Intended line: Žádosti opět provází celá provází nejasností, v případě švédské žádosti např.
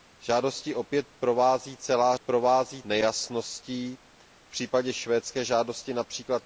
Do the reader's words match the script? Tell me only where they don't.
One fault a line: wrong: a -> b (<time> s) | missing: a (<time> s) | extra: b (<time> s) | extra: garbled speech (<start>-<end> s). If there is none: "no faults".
no faults